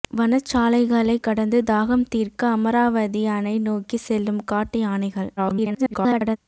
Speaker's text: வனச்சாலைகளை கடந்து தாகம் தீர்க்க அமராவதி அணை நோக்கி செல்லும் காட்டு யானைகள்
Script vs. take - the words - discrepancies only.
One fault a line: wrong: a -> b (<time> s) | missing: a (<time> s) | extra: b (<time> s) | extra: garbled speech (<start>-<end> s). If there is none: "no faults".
extra: garbled speech (5.4-6.4 s)